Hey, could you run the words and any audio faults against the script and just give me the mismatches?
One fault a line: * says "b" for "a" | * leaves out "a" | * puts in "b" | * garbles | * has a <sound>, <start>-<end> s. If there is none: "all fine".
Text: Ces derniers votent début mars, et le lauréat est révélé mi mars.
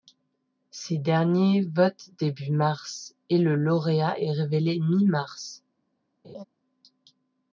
* has a laugh, 6.2-6.4 s